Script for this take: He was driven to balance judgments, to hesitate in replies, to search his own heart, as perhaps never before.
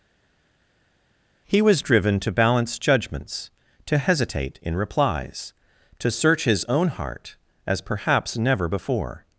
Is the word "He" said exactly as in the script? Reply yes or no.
yes